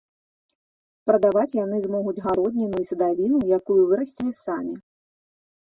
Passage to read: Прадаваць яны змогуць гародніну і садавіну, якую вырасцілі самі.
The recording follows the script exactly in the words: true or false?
true